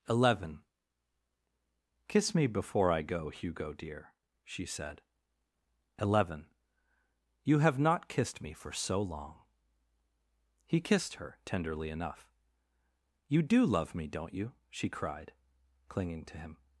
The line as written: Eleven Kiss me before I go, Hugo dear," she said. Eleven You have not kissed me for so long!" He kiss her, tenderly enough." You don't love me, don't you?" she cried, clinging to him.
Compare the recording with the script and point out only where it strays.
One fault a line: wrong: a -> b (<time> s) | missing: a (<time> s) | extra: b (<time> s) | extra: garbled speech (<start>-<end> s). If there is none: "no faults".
wrong: kiss -> kissed (10.8 s)
wrong: don't -> do (13.4 s)